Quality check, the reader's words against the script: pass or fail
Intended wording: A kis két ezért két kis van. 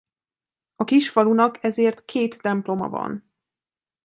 fail